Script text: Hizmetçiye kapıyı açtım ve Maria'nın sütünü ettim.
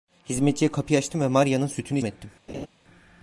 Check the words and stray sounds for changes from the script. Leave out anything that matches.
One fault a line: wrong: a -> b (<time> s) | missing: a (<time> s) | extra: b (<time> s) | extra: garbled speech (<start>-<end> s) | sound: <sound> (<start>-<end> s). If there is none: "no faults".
sound: laugh (2.5-2.7 s)